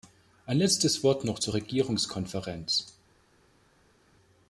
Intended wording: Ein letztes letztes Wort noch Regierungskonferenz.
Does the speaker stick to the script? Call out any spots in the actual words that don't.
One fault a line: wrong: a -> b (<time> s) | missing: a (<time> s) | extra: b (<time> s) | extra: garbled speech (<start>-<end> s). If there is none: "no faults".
missing: letztes (1.0 s)
extra: zur (1.3 s)